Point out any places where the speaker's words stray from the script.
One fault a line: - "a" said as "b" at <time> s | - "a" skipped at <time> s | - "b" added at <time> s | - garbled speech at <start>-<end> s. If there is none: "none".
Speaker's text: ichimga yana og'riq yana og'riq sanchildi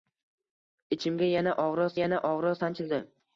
none